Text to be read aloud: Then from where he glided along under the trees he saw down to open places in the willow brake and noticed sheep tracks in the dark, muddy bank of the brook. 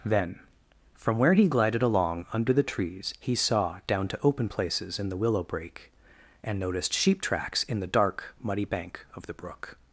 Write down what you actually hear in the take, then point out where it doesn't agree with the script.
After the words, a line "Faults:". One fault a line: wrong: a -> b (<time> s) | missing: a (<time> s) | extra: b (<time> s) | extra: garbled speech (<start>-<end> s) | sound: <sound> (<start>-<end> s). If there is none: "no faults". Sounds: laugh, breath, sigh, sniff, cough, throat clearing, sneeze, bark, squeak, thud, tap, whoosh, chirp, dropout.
Then from where he glided along under the trees he saw down to open places in the willow brake and noticed sheep tracks in the dark, muddy bank of the brook.
Faults:
no faults